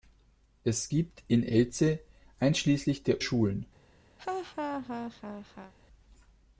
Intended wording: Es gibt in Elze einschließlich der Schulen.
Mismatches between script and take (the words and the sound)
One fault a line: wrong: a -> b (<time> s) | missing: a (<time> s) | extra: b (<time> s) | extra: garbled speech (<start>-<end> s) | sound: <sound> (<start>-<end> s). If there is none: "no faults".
sound: laugh (4.2-5.7 s)